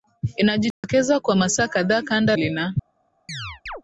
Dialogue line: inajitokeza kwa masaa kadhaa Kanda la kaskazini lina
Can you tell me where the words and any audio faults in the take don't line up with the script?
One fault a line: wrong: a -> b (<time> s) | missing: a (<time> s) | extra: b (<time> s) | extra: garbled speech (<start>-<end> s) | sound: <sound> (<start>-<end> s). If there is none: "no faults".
sound: dropout (0.7-0.8 s)
missing: la kaskazini (2.4 s)
sound: chirp (3.3-3.8 s)